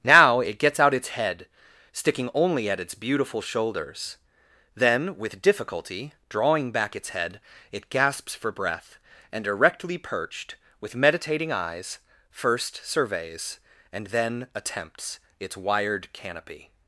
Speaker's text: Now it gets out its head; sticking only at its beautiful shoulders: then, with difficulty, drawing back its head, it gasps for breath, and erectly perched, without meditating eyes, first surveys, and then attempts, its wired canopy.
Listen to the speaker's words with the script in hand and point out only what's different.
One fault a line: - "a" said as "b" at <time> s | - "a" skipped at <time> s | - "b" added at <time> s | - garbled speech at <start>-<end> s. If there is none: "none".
- "without" said as "with" at 10.8 s